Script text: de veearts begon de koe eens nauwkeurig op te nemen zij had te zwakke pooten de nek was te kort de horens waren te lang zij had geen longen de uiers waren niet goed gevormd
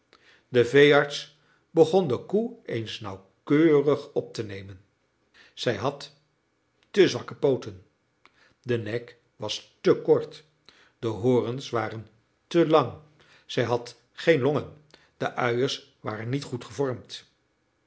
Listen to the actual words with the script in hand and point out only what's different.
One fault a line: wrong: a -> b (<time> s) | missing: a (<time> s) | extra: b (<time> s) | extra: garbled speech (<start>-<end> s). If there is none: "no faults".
no faults